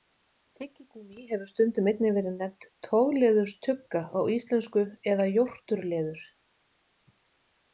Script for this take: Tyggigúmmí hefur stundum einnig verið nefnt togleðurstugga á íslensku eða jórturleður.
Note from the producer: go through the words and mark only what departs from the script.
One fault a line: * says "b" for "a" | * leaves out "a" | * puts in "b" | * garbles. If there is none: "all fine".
all fine